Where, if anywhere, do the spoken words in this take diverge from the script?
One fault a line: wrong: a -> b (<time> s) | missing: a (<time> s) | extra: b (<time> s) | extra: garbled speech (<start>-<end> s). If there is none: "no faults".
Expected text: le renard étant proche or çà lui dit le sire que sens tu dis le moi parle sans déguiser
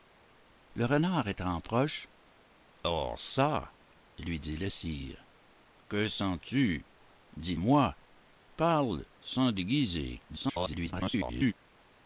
missing: le (7.5 s)
extra: garbled speech (10.3-11.5 s)